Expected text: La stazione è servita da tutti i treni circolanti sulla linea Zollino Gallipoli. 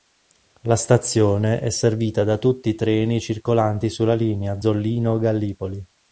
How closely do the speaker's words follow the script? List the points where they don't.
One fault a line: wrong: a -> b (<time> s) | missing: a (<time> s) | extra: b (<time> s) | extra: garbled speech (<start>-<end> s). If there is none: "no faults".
no faults